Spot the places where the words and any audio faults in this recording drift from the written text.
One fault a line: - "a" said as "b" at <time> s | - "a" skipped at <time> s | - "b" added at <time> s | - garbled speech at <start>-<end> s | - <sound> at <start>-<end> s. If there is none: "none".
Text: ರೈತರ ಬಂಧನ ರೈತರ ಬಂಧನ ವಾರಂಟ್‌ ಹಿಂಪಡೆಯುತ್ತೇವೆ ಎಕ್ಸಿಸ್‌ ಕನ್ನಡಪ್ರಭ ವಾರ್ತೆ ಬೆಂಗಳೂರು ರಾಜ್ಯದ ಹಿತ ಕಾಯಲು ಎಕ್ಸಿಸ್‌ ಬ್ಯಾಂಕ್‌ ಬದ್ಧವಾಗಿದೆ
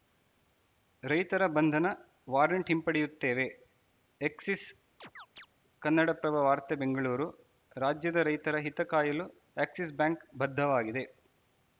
- "ರೈತರ ಬಂಧನ" skipped at 1.9 s
- chirp at 5.0-5.5 s
- "ರೈತರ" added at 8.3 s